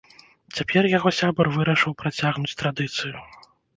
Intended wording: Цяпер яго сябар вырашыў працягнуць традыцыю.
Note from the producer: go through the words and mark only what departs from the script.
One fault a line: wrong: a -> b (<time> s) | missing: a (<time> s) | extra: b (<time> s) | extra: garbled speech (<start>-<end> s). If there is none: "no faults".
no faults